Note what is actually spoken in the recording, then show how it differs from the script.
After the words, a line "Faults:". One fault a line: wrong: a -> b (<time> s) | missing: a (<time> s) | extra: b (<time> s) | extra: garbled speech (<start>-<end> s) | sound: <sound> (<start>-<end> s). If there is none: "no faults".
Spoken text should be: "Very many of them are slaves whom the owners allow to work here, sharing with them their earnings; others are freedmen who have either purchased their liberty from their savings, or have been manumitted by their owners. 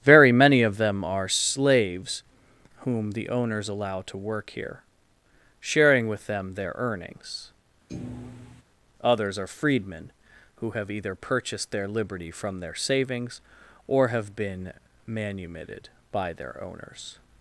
"Very many of them are slaves whom the owners allow to work here, sharing with them their earnings; others are freedmen who have either purchased their liberty from their savings, or have been manumitted by their owners.
Faults:
sound: thud (7.9-8.6 s)